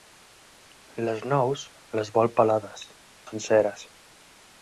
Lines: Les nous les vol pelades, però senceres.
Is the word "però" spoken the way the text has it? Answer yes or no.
no